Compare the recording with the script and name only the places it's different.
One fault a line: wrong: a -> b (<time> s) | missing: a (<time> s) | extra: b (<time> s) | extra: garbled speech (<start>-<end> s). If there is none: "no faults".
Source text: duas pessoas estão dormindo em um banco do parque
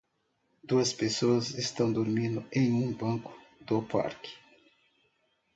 no faults